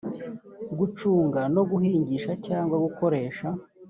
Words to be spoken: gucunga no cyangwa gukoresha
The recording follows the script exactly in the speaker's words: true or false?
false